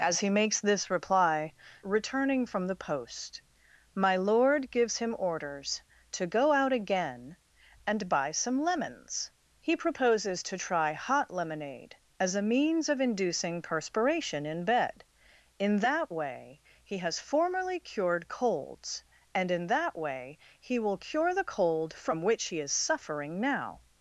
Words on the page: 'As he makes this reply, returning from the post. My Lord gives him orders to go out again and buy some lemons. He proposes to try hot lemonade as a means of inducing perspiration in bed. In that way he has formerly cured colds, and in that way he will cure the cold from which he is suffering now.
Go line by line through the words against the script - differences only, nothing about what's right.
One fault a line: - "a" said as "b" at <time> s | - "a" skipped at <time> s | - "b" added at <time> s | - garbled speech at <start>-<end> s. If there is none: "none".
none